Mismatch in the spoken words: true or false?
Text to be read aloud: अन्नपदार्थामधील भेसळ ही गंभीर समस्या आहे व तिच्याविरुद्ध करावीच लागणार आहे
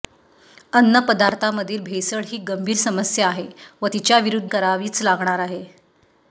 false